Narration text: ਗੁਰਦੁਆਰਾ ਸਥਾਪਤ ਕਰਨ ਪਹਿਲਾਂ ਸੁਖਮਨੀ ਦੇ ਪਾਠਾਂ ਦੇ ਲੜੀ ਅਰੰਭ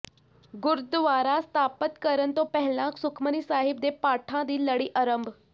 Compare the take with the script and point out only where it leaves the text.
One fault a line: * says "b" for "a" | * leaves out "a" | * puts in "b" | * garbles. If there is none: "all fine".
* puts in "ਤੋਂ"
* puts in "ਸਾਹਿਬ"
* says "ਦੀ" for "ਦੇ"